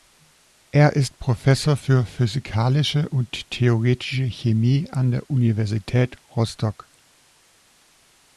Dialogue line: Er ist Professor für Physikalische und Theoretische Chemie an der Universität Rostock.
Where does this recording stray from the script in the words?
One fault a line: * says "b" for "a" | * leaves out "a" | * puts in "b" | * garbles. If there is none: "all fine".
all fine